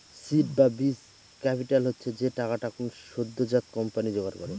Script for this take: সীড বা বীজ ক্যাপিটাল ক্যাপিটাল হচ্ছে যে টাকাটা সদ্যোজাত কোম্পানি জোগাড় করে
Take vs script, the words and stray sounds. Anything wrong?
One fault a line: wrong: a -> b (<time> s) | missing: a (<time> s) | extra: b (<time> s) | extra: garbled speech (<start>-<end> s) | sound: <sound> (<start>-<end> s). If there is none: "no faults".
missing: ক্যাপিটাল (1.8 s)
extra: কোনো (2.7 s)